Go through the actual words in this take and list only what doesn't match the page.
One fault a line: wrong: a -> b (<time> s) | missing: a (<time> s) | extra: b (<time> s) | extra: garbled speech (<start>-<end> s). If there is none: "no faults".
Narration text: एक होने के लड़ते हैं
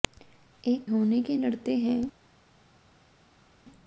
no faults